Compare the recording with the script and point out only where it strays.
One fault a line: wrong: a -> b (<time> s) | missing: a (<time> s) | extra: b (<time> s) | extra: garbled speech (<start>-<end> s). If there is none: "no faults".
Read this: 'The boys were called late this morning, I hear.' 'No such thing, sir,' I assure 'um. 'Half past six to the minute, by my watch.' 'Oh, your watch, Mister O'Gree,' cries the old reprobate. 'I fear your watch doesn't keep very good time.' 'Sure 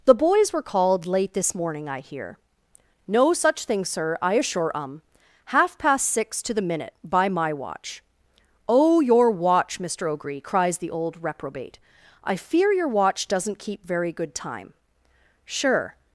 no faults